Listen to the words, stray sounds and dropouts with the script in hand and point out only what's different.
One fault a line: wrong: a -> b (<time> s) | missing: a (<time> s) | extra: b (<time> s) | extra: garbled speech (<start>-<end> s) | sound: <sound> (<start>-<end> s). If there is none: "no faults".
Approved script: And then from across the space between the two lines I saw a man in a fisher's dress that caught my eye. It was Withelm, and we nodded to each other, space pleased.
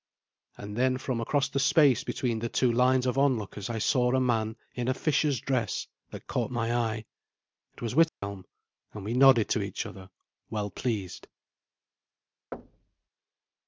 extra: of onlookers (3.0 s)
sound: dropout (8.1-8.2 s)
wrong: space -> well (10.5 s)
sound: thud (12.5-13.1 s)